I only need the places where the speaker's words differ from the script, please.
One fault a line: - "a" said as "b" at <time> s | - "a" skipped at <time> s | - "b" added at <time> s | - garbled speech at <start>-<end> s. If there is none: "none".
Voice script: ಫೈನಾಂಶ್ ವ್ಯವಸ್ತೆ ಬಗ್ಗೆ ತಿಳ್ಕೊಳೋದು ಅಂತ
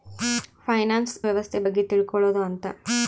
none